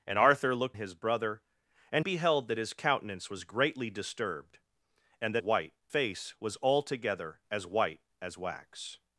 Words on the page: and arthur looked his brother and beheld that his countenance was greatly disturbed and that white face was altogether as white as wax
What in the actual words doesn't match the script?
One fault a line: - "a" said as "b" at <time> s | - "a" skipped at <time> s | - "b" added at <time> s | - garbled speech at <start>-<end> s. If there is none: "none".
none